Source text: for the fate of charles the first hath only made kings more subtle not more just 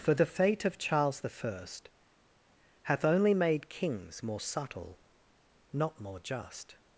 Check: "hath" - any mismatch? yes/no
no